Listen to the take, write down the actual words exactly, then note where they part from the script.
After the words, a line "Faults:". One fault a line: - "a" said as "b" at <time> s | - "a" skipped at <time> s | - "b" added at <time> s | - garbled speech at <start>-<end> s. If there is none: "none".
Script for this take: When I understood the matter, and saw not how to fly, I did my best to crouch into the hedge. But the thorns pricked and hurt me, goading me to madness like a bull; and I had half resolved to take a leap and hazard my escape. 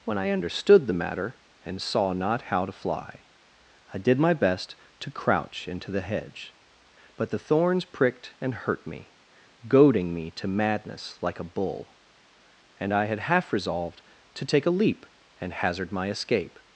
When I understood the matter, and saw not how to fly, I did my best to crouch into the hedge. But the thorns pricked and hurt me, goading me to madness like a bull; and I had half resolved to take a leap and hazard my escape.
Faults:
none